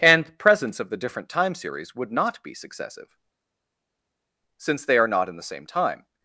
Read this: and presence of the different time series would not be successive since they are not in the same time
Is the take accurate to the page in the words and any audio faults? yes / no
yes